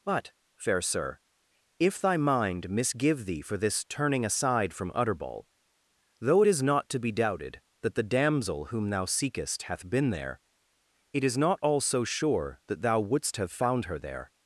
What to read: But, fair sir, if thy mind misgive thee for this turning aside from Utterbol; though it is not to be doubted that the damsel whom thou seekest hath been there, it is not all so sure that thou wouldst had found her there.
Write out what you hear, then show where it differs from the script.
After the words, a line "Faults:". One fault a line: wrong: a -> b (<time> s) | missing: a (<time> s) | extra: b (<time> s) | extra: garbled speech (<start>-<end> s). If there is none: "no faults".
But, fair sir, if thy mind misgive thee for this turning aside from Utterbol; though it is not to be doubted that the damsel whom thou seekest hath been there, it is not all so sure that thou wouldst have found her there.
Faults:
wrong: had -> have (13.4 s)